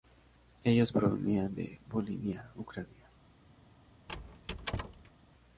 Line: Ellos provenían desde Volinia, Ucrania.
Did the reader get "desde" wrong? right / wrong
wrong